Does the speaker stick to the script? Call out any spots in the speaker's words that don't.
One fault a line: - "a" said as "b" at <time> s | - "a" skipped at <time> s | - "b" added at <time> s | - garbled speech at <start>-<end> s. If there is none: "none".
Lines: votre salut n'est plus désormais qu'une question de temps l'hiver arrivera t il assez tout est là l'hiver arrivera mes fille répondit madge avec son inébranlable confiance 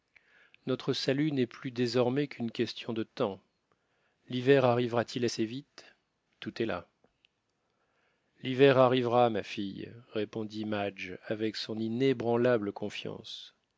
- "votre" said as "notre" at 0.7 s
- "vite" added at 5.4 s
- "mes" said as "ma" at 9.3 s